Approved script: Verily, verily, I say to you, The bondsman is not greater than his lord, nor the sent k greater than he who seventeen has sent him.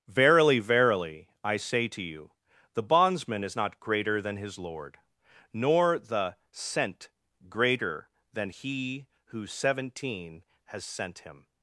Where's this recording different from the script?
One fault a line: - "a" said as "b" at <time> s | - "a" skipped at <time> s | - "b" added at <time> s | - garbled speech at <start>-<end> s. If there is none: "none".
- "k" skipped at 7.1 s